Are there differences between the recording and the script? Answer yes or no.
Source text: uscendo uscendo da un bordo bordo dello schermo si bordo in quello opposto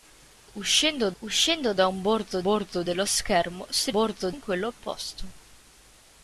no